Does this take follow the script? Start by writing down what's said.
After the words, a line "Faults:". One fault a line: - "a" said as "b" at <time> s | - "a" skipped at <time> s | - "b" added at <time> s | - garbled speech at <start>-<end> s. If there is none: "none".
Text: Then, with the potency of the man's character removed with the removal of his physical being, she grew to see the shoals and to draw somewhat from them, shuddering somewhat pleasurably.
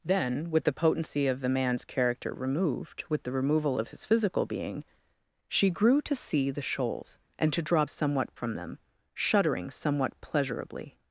Then, with the potency of the man's character removed with the removal of his physical being, she grew to see the shoals and to draw somewhat from them, shuddering somewhat pleasurably.
Faults:
none